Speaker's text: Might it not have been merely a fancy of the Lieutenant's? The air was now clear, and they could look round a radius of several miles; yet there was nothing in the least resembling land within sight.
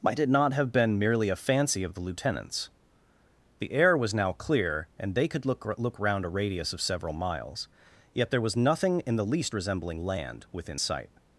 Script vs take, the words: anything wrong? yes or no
yes